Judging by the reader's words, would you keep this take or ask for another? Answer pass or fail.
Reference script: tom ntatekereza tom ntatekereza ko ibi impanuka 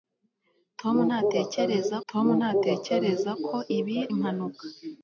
pass